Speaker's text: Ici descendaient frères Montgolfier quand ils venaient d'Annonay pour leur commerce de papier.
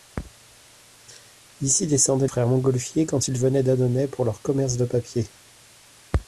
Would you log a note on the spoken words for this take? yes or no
no